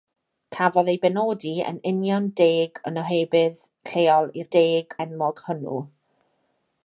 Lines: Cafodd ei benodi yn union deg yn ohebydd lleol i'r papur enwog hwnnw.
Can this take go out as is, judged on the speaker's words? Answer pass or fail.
fail